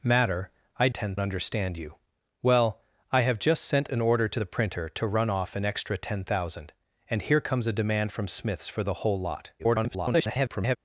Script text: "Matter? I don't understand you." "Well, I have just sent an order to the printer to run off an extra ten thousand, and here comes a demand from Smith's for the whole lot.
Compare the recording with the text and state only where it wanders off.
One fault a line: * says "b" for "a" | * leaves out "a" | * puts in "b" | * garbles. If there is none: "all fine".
* says "ten" for "don't"
* garbles